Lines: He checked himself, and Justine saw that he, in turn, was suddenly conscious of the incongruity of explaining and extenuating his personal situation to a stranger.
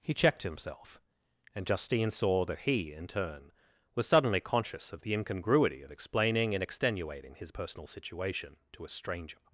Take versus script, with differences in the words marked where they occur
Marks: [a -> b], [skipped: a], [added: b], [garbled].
He checked himself, and Justine saw that he, in turn, was suddenly conscious of the incongruity of explaining and extenuating his personal situation to a stranger.